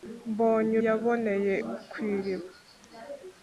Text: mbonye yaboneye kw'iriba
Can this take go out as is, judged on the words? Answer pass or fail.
pass